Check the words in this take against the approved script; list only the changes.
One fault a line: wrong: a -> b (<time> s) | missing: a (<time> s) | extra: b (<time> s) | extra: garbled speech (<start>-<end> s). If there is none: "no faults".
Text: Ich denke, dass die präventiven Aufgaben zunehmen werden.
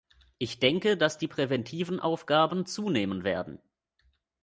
no faults